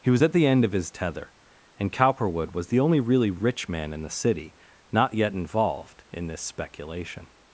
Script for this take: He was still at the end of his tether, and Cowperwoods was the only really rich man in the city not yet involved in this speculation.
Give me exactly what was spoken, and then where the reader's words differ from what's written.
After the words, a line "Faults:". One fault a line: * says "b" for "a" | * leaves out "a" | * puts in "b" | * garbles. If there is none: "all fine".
He was at the end of his tether, and Cowperwood was the only really rich man in the city not yet involved in this speculation.
Faults:
* leaves out "still"
* says "Cowperwood" for "Cowperwoods"